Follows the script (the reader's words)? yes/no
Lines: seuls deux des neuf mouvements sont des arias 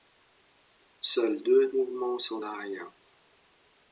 no